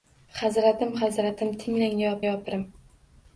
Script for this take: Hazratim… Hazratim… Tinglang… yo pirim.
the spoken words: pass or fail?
fail